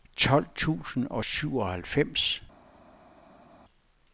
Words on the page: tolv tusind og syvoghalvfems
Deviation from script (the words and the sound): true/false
false